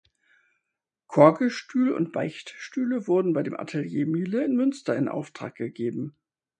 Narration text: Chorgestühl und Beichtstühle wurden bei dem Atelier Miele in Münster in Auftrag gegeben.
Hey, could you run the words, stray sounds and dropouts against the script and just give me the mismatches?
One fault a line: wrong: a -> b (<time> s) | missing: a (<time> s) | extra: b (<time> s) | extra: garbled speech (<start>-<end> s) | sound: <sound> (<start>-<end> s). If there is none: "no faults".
no faults